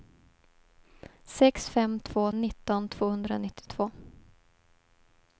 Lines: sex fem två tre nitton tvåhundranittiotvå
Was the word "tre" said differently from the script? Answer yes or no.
yes